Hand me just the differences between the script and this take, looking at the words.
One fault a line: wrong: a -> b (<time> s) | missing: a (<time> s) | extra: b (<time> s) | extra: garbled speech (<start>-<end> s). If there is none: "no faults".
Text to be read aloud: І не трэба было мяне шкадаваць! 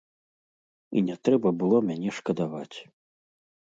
no faults